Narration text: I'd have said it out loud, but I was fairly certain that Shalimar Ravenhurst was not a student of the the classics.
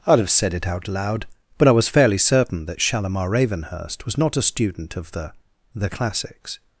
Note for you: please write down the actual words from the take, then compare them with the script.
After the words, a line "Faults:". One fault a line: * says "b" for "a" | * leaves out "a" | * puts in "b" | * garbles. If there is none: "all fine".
I'd have said it out loud, but I was fairly certain that Shalimar Ravenhurst was not a student of the the classics.
Faults:
all fine